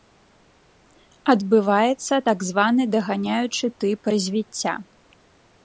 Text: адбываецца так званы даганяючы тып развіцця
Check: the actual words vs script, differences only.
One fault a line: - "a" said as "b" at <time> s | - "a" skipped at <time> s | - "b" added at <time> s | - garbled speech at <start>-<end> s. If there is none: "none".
none